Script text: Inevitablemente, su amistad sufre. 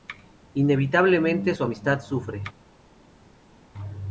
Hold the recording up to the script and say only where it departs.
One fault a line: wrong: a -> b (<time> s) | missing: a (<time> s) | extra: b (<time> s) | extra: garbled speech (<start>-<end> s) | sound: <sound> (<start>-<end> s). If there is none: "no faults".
no faults